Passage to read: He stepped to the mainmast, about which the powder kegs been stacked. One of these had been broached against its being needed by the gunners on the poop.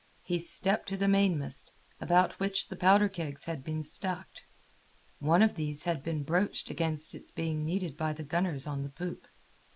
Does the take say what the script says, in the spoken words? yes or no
no